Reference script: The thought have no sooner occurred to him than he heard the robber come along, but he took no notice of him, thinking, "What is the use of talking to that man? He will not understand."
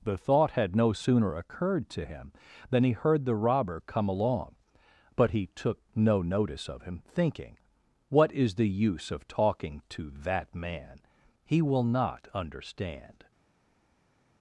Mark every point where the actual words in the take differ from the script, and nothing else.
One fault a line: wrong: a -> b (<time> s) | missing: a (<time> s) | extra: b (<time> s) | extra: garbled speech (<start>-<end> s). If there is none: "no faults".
wrong: have -> had (0.5 s)